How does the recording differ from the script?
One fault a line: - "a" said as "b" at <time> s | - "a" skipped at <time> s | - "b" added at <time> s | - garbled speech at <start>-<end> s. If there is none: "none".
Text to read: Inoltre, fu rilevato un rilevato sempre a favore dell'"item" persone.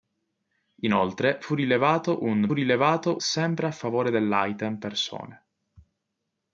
none